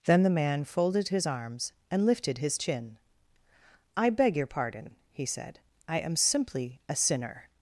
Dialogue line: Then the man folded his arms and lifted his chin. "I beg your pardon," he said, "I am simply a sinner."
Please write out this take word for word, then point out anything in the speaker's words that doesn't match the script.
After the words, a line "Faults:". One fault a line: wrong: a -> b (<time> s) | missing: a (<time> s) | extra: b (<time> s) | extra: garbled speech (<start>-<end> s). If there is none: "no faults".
Then the man folded his arms and lifted his chin. "I beg your pardon," he said, "I am simply a sinner."
Faults:
no faults